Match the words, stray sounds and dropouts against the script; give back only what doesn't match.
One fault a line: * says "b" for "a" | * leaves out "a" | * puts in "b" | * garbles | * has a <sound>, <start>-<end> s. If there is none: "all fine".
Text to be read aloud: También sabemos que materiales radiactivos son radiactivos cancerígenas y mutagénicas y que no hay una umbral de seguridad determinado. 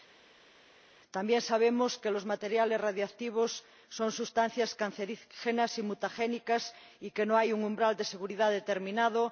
* puts in "los"
* says "sustancias" for "radiactivos"
* says "un" for "una"